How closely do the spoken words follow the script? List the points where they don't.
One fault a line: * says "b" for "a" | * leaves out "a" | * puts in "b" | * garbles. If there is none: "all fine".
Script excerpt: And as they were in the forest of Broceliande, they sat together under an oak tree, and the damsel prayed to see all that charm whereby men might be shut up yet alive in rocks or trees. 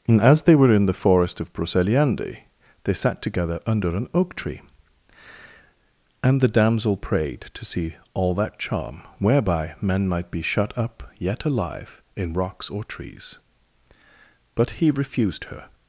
* puts in "But he refused her"